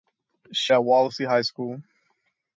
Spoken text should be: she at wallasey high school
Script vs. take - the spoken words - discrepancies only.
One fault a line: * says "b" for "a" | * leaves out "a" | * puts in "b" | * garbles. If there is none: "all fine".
all fine